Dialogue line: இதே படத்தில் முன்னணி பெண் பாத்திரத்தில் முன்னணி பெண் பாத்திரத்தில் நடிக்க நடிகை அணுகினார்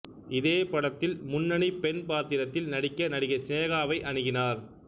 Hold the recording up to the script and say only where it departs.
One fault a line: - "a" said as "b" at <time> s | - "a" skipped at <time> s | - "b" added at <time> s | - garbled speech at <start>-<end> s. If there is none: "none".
- "முன்னணி பெண் பாத்திரத்தில்" skipped at 2.7 s
- "சினேகாவை" added at 3.4 s